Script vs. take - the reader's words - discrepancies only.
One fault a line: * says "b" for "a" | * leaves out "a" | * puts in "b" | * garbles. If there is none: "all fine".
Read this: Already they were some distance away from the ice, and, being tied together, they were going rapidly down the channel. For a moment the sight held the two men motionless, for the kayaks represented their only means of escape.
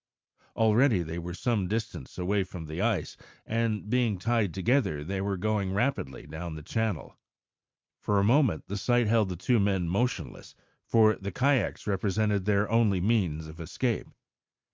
all fine